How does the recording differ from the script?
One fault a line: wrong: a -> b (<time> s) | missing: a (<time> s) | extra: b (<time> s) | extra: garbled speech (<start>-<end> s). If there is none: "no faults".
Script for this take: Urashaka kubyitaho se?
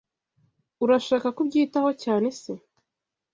extra: cyane (2.0 s)